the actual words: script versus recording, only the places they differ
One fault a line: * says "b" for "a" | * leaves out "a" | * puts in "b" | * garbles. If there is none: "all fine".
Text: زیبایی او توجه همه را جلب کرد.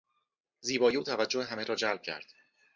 all fine